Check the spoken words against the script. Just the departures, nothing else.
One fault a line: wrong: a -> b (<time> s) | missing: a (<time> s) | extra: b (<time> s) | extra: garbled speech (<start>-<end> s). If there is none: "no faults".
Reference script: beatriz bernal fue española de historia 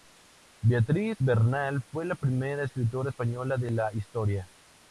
extra: la primera escritora (2.0 s)
extra: la (3.7 s)